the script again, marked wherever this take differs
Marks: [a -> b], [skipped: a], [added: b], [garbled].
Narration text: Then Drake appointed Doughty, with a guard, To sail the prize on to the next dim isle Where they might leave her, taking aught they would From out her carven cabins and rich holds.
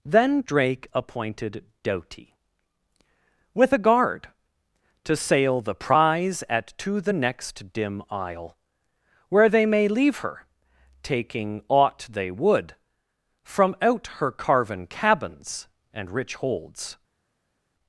Then Drake appointed Doughty, with a guard, To sail the prize [on -> at] to the next dim isle Where they [might -> may] leave her, taking aught they would From out her carven cabins and rich holds.